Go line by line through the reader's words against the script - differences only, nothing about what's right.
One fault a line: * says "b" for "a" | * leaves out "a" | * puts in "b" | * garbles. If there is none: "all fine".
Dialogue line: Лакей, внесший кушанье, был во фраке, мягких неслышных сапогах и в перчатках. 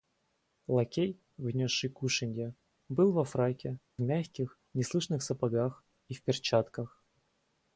all fine